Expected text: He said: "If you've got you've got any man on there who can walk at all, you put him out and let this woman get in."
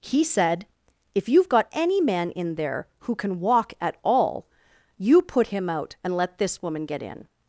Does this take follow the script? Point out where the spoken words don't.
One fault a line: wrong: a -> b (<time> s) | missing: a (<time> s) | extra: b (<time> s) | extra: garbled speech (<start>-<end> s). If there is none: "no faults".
missing: you've got (1.7 s)
wrong: on -> in (2.3 s)